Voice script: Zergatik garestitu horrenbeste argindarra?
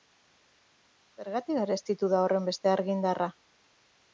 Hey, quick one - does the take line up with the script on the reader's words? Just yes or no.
no